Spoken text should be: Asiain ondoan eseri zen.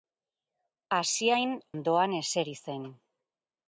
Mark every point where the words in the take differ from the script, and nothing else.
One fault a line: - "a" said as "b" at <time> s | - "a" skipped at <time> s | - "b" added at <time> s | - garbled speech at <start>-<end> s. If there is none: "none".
none